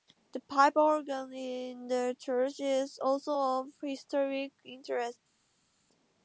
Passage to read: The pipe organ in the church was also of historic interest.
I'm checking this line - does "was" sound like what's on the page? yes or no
no